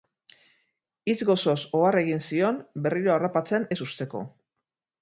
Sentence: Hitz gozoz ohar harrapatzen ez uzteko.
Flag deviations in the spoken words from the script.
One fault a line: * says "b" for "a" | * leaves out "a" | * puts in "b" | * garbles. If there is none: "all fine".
* puts in "egin zion berriro"